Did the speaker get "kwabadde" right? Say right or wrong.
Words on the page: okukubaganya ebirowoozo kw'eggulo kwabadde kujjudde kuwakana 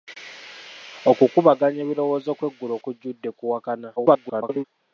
wrong